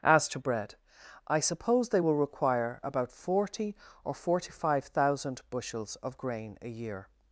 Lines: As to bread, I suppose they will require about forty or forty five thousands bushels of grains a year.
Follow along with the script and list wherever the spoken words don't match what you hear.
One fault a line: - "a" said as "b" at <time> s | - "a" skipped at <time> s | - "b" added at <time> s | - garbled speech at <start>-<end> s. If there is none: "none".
- "thousands" said as "thousand" at 4.9 s
- "grains" said as "grain" at 6.2 s